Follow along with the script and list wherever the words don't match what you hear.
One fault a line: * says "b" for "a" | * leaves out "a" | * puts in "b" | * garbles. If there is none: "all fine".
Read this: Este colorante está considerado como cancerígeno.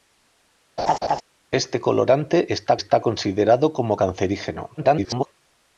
* puts in "está"
* garbles